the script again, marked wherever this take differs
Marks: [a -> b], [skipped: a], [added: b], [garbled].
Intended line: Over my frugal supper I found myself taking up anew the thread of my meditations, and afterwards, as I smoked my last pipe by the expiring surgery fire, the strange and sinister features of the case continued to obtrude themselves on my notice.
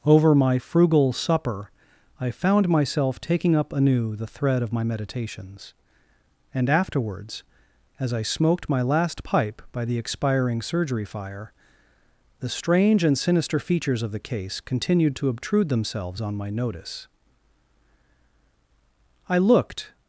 Over my frugal supper I found myself taking up anew the thread of my meditations, and afterwards, as I smoked my last pipe by the expiring surgery fire, the strange and sinister features of the case continued to obtrude themselves on my notice. [added: I looked]